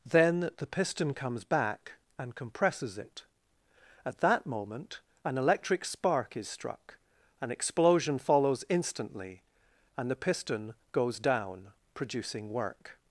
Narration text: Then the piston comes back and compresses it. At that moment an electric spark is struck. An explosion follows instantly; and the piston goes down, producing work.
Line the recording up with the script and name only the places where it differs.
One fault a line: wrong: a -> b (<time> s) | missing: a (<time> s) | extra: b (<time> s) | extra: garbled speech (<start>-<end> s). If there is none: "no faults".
no faults